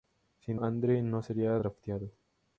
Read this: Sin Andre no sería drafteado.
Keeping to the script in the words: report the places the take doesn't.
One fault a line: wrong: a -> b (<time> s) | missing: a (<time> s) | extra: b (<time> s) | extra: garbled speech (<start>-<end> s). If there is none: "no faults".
no faults